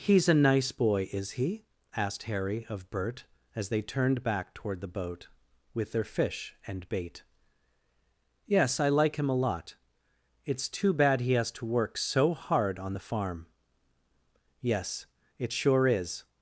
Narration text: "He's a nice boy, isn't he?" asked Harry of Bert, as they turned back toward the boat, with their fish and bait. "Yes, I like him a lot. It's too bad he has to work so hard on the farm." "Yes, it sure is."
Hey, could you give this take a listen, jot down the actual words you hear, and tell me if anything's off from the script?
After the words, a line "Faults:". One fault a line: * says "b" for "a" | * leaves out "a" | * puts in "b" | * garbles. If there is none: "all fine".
"He's a nice boy, is he?" asked Harry of Bert, as they turned back toward the boat, with their fish and bait. "Yes, I like him a lot. It's too bad he has to work so hard on the farm." "Yes, it sure is."
Faults:
* says "is" for "isn't"